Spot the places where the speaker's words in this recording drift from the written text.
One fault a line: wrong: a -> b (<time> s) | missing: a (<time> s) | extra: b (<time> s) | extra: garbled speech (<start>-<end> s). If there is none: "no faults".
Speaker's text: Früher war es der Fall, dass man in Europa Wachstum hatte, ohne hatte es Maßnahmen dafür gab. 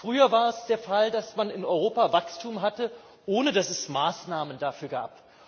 wrong: hatte -> dass (3.5 s)